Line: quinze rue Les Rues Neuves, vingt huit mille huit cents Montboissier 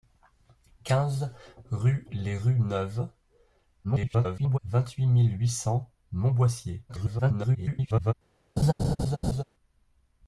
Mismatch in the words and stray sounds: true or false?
true